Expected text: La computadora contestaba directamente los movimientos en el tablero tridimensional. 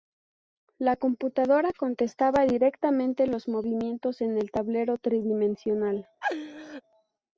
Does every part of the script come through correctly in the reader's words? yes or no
yes